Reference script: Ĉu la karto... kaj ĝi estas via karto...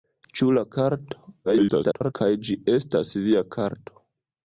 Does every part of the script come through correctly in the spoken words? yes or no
no